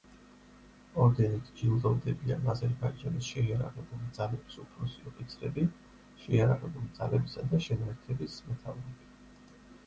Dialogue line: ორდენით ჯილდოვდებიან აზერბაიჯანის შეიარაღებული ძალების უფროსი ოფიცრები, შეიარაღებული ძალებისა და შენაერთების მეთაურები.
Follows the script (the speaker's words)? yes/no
yes